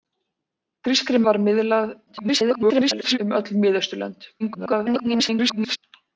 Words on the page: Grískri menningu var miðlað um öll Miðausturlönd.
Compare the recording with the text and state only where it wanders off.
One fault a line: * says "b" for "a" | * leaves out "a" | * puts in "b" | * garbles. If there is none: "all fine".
* leaves out "menningu"
* garbles
* garbles